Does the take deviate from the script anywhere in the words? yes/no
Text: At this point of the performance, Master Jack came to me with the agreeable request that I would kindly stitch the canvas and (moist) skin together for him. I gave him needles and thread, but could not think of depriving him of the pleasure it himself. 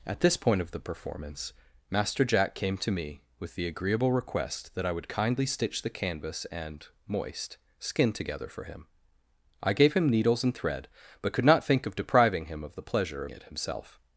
no